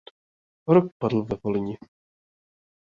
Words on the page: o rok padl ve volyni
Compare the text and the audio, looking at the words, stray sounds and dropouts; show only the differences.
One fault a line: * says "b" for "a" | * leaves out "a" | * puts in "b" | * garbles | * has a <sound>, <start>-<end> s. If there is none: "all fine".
all fine